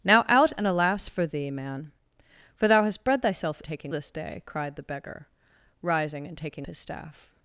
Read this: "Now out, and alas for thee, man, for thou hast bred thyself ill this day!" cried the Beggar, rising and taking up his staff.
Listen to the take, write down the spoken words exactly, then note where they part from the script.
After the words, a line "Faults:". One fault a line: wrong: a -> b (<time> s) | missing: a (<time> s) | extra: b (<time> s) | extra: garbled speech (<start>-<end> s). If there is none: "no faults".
"Now out, and alas for thee, man, for thou hast bred thyself taking this day!" cried the Beggar, rising and taking his staff.
Faults:
wrong: ill -> taking (3.7 s)
missing: up (6.7 s)